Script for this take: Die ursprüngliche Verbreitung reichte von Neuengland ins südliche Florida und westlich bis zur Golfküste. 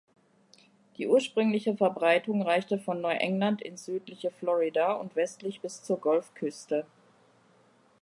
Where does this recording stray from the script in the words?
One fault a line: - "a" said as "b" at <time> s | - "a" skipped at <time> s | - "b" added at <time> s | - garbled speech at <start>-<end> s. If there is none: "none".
none